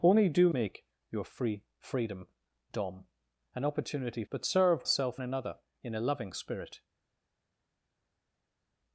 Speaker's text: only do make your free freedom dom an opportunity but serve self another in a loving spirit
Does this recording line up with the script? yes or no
yes